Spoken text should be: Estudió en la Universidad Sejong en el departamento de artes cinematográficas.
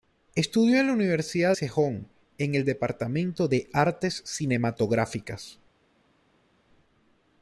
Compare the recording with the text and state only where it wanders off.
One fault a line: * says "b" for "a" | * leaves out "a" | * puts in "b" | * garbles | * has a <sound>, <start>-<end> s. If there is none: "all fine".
all fine